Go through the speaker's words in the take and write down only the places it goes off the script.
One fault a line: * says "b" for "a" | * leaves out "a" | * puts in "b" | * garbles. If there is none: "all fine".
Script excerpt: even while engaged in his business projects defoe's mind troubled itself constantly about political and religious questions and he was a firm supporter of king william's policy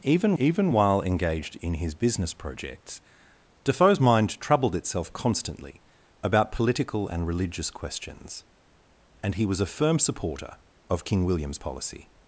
* puts in "even"